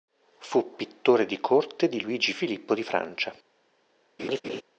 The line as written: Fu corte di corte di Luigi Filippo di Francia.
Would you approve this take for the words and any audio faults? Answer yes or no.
no